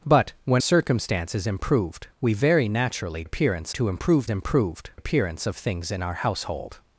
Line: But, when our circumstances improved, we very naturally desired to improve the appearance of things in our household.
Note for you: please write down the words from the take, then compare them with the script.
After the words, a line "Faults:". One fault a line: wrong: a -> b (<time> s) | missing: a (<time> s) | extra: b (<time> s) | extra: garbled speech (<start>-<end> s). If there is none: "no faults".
But, when circumstances improved, we very naturally appearance to improve improved appearance of things in our household.
Faults:
missing: our (0.6 s)
wrong: desired -> appearance (3.2 s)
wrong: the -> improved (4.3 s)